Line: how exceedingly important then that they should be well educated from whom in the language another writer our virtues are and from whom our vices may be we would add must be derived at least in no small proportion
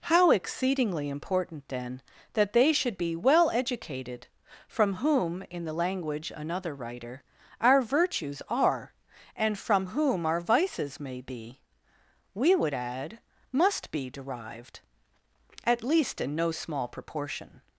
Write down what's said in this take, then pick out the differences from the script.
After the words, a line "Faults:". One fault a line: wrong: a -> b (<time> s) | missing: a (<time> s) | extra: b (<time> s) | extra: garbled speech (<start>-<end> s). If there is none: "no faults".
how exceedingly important then that they should be well educated from whom in the language another writer our virtues are and from whom our vices may be we would add must be derived at least in no small proportion
Faults:
no faults